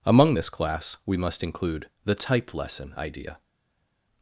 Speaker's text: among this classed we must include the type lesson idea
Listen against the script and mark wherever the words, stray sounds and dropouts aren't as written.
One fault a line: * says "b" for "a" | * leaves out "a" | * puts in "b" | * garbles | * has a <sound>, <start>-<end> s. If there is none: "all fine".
* says "class" for "classed"